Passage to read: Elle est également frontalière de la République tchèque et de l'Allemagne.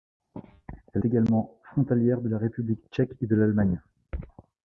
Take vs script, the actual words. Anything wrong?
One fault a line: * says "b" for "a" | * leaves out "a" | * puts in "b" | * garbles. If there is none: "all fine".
* leaves out "est"